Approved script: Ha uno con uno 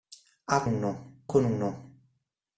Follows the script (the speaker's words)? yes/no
yes